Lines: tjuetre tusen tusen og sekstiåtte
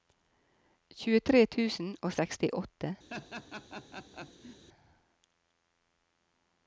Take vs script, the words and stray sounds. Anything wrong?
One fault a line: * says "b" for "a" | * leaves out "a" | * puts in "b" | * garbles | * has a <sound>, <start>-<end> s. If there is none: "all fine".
* leaves out "tusen"
* has a laugh, 3.1-4.6 s